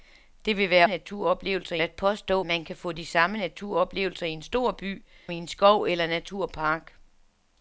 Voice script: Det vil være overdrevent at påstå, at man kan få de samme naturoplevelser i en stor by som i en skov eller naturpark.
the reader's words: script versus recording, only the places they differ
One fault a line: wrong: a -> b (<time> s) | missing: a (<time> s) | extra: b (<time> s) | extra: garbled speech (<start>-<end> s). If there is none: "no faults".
wrong: overdrevent -> naturoplevelser (0.9 s)
missing: at (2.4 s)
missing: som (5.0 s)